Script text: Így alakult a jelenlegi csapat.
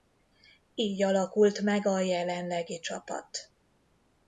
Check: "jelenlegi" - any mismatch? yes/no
no